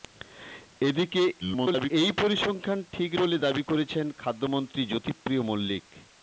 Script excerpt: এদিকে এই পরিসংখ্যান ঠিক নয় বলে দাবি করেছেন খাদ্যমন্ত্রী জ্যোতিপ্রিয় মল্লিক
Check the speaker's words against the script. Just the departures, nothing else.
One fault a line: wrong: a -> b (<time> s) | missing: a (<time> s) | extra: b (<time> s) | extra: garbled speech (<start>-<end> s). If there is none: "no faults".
extra: garbled speech (1.4-1.9 s)
missing: নয় (3.1 s)